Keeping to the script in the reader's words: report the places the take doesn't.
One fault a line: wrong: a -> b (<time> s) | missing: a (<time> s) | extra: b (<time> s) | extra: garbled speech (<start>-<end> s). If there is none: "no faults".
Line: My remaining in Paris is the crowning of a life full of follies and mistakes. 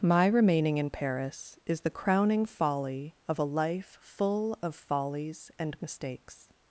extra: folly (2.5 s)